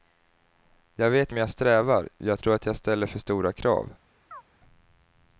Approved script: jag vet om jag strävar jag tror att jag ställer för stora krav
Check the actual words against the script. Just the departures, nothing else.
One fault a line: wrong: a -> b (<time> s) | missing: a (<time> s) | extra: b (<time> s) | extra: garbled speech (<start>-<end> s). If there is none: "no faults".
no faults